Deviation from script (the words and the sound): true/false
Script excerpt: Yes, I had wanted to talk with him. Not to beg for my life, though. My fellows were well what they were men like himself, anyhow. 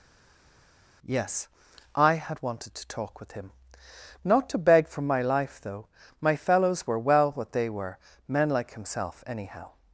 false